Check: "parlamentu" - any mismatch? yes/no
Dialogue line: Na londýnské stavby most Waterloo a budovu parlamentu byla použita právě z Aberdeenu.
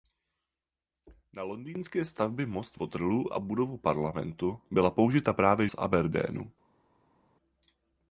no